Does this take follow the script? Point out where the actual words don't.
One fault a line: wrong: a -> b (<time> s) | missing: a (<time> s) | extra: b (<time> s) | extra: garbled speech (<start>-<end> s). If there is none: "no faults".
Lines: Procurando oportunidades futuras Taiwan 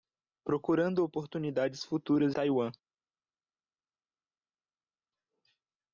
no faults